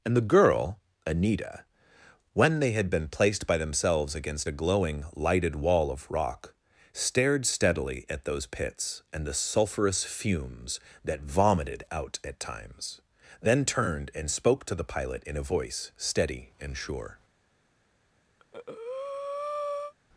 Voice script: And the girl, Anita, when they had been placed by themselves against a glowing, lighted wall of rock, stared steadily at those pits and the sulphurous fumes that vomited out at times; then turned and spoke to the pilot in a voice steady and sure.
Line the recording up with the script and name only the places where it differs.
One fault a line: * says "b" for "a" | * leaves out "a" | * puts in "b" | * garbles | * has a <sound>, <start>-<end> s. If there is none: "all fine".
* has a breath, 18.4-19.9 s